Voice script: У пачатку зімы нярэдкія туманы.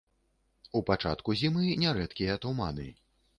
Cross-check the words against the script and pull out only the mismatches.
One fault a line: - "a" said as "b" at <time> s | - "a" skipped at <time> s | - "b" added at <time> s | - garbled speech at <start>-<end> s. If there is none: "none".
none